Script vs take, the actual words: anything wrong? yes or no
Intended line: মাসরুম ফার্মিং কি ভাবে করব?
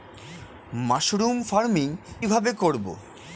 yes